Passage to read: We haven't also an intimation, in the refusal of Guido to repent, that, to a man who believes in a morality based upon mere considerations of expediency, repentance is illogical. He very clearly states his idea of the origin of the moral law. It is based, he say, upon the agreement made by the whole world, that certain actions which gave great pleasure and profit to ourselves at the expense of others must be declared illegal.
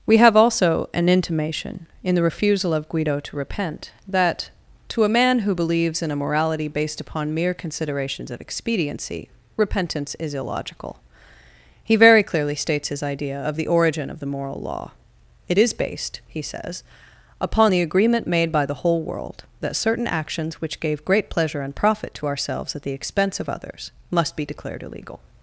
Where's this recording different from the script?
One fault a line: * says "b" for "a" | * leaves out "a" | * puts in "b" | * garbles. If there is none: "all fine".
* says "have" for "haven't"
* says "says" for "say"